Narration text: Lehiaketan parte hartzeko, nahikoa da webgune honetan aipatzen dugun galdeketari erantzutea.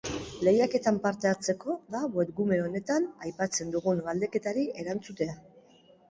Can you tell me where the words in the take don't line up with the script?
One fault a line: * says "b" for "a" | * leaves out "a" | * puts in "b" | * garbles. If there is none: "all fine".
* leaves out "nahikoa"